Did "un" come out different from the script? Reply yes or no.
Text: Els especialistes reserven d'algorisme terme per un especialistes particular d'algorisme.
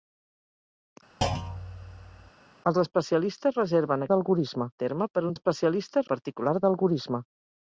no